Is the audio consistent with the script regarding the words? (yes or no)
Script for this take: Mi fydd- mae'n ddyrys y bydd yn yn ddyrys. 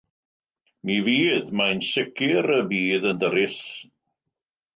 no